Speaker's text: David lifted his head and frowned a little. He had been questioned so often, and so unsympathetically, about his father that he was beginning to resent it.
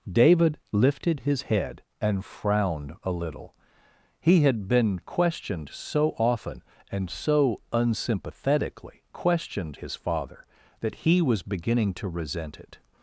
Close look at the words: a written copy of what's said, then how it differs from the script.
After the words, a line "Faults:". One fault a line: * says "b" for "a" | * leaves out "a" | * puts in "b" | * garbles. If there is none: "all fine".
David lifted his head and frowned a little. He had been questioned so often, and so unsympathetically, questioned his father that he was beginning to resent it.
Faults:
* says "questioned" for "about"